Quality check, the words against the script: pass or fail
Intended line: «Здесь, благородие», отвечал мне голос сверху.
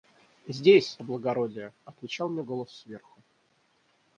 pass